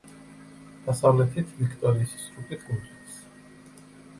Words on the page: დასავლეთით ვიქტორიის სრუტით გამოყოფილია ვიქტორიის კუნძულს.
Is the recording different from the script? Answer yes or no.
yes